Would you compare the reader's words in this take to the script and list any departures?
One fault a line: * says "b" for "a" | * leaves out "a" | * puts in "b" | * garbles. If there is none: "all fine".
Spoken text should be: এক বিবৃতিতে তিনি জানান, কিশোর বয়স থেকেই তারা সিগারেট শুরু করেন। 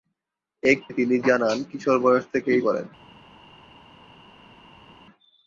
* leaves out "বিবৃতিতে"
* leaves out "তারা সিগারেট শুরু"